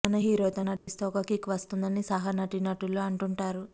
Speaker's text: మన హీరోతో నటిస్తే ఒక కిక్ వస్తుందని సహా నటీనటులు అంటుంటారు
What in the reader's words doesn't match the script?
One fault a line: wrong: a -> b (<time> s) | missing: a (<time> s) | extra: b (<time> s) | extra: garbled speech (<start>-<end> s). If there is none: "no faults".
no faults